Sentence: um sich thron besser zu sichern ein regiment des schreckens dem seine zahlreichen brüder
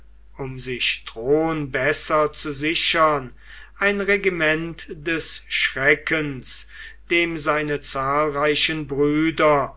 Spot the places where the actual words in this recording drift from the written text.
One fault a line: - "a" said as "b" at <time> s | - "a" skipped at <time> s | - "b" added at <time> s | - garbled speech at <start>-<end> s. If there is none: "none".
none